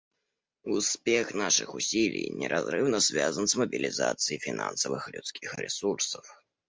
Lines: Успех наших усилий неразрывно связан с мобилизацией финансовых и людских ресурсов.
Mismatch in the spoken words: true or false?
false